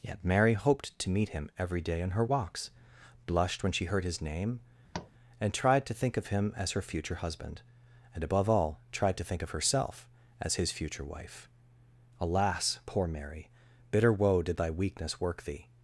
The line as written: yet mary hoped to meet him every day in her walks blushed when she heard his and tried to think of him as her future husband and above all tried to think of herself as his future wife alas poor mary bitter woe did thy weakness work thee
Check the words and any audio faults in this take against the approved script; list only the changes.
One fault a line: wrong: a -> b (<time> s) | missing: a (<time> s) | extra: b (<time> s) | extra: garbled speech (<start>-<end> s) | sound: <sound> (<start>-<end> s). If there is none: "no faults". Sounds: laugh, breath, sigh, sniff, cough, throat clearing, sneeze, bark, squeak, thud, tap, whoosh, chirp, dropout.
extra: name (4.2 s)
sound: tap (4.9-5.1 s)